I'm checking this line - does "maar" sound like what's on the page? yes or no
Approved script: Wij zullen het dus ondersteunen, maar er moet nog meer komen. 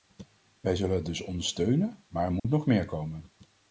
yes